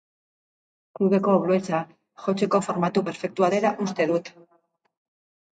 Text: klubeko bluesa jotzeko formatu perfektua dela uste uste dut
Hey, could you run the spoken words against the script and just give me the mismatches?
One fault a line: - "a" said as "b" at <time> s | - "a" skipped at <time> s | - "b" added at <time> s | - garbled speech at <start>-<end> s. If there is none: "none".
- "uste" skipped at 4.1 s